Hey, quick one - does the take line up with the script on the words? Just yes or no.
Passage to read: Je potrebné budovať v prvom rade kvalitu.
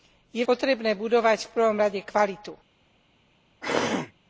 yes